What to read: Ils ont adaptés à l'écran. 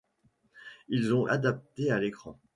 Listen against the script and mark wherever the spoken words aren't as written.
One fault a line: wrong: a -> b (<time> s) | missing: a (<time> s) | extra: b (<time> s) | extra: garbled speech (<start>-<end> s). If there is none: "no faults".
no faults